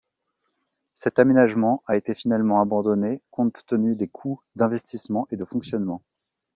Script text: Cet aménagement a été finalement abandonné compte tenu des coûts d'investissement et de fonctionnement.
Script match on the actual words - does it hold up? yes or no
yes